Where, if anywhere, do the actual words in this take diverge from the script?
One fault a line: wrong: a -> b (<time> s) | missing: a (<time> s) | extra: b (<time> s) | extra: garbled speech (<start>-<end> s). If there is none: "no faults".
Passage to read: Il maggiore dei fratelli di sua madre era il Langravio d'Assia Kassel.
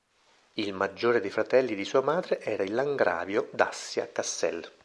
no faults